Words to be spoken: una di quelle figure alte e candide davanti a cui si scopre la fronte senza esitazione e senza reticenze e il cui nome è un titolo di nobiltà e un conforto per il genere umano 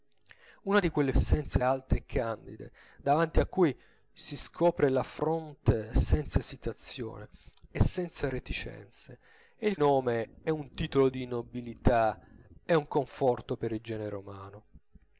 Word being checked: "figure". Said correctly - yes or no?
no